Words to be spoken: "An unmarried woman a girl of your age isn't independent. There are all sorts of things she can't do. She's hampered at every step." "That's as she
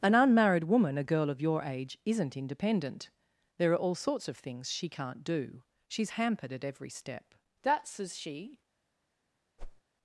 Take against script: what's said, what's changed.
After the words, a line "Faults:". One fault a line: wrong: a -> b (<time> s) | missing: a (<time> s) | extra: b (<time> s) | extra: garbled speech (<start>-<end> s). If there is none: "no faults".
"An unmarried woman a girl of your age isn't independent. There are all sorts of things she can't do. She's hampered at every step." "That's as she
Faults:
no faults